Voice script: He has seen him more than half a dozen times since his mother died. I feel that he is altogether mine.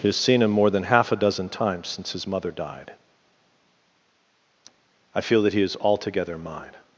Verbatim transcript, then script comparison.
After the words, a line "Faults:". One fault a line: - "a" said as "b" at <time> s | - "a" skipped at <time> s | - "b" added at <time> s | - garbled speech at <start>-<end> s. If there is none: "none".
He has seen him more than half a dozen times since his mother died. I feel that he is altogether mine.
Faults:
none